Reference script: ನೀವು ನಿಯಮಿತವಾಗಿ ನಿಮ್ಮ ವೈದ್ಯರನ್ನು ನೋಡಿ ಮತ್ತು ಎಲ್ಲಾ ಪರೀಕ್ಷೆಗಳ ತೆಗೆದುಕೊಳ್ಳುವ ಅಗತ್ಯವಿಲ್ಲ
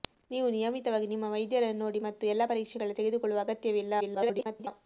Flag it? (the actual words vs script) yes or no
yes